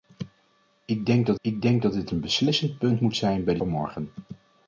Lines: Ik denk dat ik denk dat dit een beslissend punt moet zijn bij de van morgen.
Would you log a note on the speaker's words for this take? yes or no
no